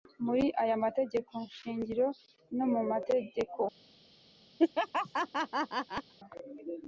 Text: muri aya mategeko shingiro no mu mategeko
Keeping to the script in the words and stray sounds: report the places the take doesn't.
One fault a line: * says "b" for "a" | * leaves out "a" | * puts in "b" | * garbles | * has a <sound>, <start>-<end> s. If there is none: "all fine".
* has a laugh, 4.6-6.1 s